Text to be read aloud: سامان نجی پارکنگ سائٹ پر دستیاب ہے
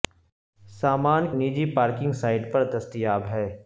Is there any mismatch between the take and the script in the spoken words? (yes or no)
no